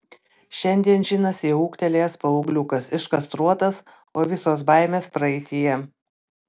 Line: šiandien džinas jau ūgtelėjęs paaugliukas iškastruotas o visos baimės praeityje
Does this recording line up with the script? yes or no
yes